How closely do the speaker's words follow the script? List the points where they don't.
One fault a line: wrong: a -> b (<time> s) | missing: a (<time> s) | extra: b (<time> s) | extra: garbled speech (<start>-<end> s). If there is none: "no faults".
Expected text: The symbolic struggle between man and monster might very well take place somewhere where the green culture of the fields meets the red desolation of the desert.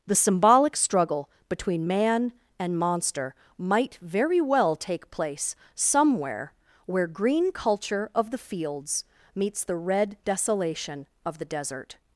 missing: the (7.1 s)